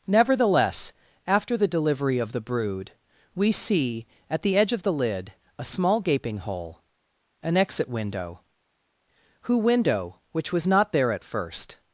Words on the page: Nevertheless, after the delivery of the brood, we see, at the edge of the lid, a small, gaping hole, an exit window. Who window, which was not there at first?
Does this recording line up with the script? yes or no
yes